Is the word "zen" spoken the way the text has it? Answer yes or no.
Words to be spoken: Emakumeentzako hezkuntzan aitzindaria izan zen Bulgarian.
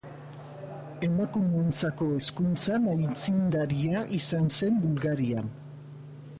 yes